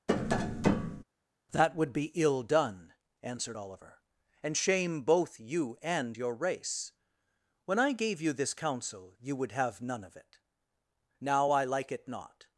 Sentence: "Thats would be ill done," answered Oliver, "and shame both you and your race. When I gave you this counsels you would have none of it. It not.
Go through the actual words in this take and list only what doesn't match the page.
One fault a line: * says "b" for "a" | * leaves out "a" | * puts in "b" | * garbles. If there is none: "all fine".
* says "That" for "Thats"
* says "counsel" for "counsels"
* puts in "Now I like"